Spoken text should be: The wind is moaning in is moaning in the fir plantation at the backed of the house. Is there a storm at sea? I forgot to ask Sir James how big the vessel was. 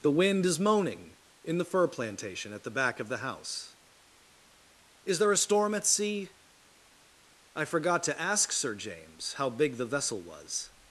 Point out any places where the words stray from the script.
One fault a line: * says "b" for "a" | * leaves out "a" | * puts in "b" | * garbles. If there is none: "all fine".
* leaves out "is moaning in"
* says "back" for "backed"